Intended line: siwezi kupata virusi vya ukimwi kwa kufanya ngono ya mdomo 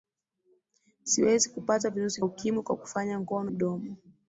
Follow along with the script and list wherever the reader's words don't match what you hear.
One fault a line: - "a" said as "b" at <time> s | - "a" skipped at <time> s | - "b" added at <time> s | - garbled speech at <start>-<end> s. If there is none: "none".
- "vya" skipped at 2.2 s
- "ya" skipped at 3.5 s